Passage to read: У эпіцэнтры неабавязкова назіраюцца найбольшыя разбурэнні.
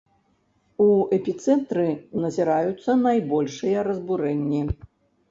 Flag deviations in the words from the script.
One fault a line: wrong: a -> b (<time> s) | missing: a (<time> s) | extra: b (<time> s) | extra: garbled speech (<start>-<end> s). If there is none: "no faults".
missing: неабавязкова (1.9 s)